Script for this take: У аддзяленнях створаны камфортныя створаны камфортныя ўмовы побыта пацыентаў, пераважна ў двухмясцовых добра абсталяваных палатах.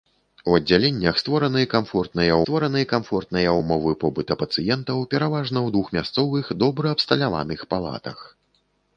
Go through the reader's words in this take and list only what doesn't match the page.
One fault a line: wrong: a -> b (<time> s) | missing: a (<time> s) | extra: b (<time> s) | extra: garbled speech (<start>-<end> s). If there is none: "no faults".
no faults